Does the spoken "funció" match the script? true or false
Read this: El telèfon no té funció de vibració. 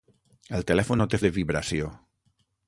false